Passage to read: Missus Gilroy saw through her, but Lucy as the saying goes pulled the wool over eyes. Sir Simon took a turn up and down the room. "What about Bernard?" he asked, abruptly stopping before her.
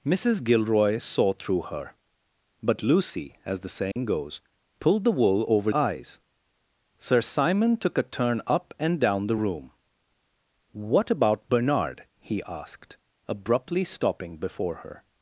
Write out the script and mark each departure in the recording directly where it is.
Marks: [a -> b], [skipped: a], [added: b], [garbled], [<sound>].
Missus Gilroy saw through her, but Lucy as the saying [dropout] goes pulled the wool over eyes. Sir Simon took a turn up and down the room. "What about Bernard?" he asked, abruptly stopping before her.